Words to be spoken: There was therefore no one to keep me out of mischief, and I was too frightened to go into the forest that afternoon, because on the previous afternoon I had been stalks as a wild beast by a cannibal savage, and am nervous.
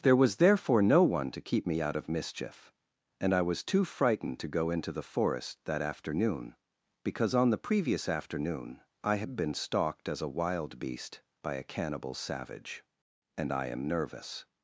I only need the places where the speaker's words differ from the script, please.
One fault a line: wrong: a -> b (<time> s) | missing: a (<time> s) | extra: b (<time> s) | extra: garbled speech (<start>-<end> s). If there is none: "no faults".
wrong: stalks -> stalked (9.5 s)
extra: I (13.5 s)